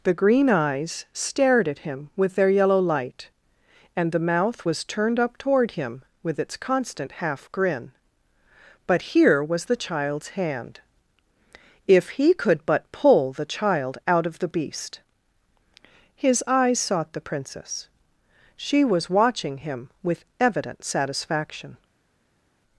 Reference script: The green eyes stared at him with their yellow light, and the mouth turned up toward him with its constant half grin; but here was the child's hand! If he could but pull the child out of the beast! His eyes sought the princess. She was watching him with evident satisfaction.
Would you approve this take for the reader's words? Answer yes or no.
no